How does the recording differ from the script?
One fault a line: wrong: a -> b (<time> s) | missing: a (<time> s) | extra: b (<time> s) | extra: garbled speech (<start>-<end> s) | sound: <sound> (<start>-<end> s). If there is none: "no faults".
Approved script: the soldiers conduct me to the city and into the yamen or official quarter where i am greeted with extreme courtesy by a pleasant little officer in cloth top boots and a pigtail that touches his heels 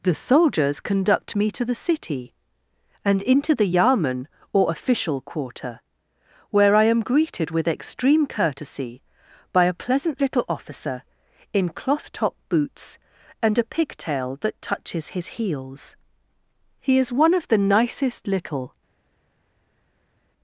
extra: he is one of the nicest little (16.8 s)